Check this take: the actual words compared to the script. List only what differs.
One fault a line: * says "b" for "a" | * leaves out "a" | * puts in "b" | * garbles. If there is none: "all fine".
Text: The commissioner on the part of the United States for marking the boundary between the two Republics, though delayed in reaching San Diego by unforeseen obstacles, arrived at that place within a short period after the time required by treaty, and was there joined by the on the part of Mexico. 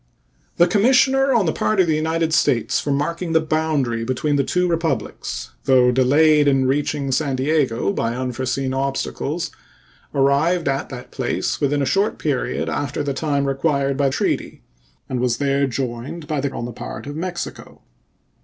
all fine